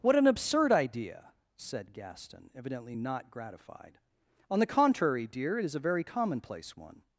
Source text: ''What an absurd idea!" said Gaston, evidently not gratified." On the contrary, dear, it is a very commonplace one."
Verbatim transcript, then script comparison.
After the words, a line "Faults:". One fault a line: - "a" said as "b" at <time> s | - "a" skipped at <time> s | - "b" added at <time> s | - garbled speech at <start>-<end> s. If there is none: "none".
''What an absurd idea!" said Gaston, evidently not gratified." On the contrary, dear, it is a very commonplace one."
Faults:
none